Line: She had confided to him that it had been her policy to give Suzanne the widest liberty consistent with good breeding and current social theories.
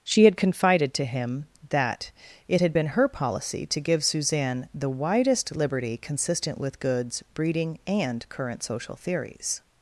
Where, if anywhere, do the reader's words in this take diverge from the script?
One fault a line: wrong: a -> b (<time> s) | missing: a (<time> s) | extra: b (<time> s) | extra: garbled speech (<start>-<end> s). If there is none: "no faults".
wrong: good -> goods (6.8 s)